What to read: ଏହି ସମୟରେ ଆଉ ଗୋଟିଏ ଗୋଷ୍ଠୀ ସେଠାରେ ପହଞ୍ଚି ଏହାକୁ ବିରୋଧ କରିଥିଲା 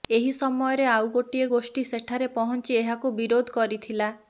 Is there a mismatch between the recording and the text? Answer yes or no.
no